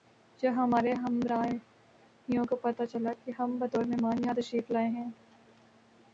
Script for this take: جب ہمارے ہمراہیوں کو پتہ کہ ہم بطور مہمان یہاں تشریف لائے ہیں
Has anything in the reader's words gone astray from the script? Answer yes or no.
yes